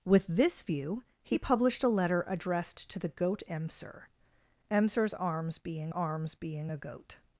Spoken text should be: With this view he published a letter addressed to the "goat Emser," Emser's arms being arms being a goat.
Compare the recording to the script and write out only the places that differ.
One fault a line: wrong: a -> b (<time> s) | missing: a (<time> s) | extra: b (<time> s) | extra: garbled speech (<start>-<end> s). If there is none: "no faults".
no faults